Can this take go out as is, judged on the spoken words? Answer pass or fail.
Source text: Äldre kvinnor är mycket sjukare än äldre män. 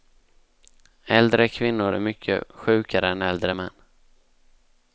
pass